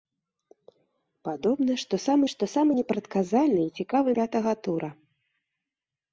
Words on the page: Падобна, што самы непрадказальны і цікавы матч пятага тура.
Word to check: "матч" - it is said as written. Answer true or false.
false